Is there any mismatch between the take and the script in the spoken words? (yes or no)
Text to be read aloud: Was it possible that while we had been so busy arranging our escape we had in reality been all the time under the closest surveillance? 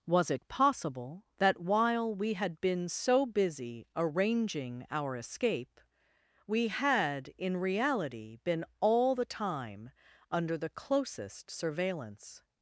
no